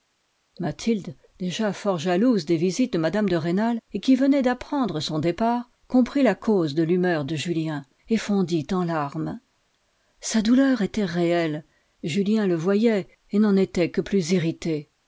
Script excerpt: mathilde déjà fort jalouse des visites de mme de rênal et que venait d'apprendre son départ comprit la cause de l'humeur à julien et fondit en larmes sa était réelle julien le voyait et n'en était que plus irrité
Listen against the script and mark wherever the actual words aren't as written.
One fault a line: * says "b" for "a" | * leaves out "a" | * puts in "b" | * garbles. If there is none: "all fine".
* says "qui" for "que"
* says "de" for "à"
* puts in "douleur"